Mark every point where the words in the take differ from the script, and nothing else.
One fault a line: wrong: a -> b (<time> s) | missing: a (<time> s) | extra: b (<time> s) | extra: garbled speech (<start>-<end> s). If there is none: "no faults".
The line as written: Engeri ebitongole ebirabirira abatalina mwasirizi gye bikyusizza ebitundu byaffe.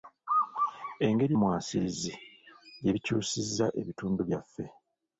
missing: ebitongole ebirabirira abatalina (1.3 s)